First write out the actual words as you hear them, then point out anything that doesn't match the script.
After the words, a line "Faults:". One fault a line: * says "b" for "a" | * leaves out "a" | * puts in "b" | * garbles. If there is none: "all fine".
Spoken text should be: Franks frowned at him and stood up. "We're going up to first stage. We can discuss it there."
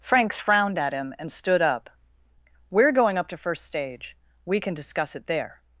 Franks frowned at him and stood up. "We're going up to first stage. We can discuss it there."
Faults:
all fine